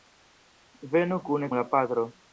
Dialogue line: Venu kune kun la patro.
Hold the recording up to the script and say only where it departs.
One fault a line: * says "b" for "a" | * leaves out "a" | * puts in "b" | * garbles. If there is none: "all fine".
* leaves out "kun"